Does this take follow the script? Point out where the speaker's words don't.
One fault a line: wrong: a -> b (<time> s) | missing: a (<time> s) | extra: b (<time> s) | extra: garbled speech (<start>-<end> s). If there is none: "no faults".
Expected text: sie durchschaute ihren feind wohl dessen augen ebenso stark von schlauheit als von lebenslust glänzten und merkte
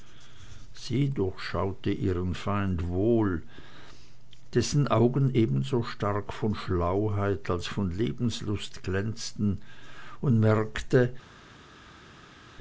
no faults